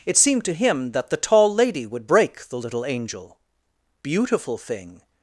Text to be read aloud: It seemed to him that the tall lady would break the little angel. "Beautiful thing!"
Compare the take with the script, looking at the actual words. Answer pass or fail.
pass